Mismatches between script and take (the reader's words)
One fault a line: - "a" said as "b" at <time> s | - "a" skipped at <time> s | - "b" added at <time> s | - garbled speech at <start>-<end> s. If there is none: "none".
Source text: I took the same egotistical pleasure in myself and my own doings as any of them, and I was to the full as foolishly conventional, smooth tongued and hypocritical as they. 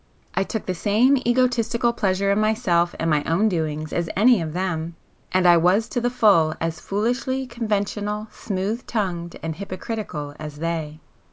none